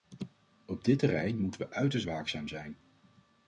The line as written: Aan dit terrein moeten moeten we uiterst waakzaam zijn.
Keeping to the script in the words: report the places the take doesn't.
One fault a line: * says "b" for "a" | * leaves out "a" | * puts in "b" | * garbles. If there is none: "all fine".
* says "Op" for "Aan"
* leaves out "moeten"